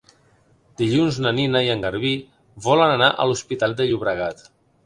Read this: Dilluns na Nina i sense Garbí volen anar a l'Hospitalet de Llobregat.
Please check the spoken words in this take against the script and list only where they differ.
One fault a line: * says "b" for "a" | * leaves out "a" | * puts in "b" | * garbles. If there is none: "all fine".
* says "en" for "sense"